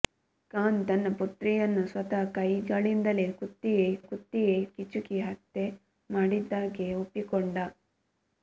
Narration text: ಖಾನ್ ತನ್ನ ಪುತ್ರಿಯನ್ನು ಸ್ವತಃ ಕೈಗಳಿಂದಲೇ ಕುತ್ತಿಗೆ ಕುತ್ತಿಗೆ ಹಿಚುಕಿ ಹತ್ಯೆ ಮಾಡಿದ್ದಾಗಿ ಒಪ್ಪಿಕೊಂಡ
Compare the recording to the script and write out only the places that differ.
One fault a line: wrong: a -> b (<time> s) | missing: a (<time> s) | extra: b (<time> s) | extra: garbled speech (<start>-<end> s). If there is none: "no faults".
no faults